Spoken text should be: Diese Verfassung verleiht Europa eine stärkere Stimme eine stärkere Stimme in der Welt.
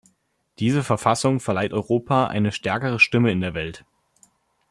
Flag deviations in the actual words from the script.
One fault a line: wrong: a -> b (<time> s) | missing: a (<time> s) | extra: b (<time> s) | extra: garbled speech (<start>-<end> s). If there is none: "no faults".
missing: eine stärkere Stimme (3.3 s)